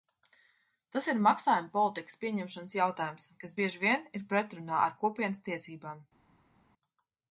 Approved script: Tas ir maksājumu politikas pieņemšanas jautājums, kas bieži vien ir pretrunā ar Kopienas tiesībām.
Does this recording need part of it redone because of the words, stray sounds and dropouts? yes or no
no